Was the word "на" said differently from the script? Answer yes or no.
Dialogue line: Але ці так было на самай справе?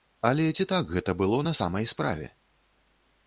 no